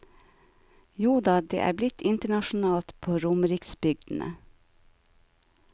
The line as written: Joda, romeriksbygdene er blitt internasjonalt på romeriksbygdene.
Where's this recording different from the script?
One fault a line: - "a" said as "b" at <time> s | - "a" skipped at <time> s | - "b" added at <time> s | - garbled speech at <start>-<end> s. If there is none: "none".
- "romeriksbygdene" said as "det" at 1.4 s